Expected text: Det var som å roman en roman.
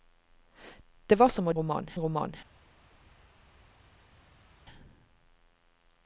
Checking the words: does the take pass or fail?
pass